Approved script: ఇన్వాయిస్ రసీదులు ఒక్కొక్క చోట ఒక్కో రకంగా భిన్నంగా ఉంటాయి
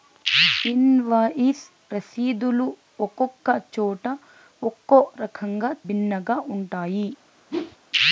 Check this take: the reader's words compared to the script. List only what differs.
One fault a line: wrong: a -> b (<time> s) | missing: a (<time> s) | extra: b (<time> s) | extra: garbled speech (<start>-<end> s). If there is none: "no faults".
no faults